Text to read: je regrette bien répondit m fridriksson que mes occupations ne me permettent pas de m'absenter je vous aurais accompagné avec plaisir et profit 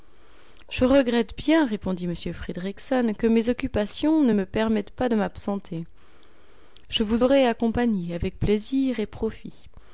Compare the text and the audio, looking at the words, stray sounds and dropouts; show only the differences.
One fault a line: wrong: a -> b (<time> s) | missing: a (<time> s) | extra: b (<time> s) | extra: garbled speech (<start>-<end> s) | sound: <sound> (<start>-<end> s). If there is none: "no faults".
no faults